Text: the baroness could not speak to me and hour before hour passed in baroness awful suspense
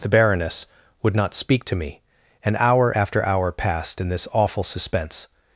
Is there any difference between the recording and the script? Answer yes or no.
yes